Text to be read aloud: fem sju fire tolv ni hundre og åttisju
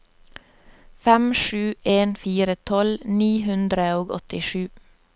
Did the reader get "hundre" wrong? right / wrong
right